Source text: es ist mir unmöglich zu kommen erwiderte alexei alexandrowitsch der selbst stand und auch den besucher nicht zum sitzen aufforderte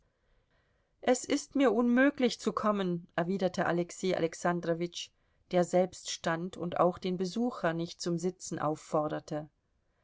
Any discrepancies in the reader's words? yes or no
no